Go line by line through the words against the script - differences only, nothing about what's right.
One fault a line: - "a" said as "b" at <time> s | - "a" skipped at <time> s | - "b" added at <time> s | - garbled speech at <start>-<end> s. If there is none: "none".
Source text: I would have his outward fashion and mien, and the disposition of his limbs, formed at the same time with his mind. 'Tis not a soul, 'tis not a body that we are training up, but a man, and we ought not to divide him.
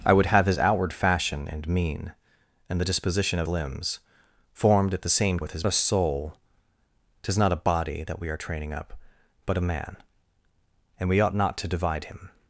- "his" skipped at 3.5 s
- "time" skipped at 5.4 s
- "mind Tis not" skipped at 5.7 s